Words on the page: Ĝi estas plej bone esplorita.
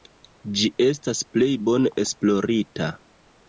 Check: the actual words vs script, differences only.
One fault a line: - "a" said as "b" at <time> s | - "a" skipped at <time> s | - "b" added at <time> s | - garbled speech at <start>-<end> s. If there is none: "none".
none